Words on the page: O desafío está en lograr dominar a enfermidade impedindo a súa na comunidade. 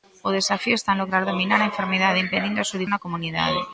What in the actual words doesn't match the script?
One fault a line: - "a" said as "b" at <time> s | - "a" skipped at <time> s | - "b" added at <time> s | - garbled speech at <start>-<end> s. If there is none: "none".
none